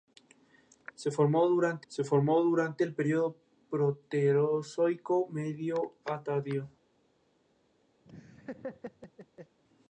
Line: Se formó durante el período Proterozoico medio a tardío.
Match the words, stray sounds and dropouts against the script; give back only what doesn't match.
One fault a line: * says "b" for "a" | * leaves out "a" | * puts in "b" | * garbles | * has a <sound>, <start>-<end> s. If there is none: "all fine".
* puts in "se formó durante"
* has a laugh, 8.0-9.6 s